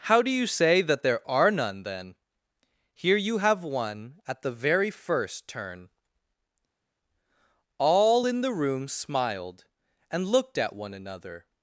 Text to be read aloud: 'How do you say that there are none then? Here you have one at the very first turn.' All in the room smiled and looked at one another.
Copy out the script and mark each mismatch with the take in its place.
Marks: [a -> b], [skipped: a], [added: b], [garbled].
'How do you say that there are none then? Here you have one at the very first turn.' All in the room smiled and looked at one another.